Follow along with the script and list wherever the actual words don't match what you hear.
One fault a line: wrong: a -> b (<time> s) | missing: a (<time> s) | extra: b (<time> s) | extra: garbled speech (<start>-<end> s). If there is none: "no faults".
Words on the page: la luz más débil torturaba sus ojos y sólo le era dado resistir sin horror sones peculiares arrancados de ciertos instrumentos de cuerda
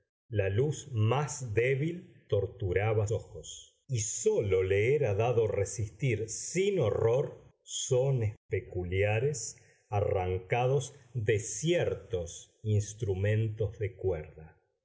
missing: sus (3.1 s)